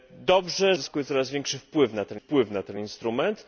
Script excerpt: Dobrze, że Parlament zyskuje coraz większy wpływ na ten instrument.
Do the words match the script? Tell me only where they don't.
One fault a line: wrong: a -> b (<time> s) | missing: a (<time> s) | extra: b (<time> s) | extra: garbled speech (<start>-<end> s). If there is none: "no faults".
missing: że Parlament (0.8 s)
extra: wpływ na ten (2.1 s)